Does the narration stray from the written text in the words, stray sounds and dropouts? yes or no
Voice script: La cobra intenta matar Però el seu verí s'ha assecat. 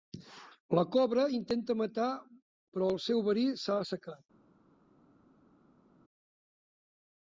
no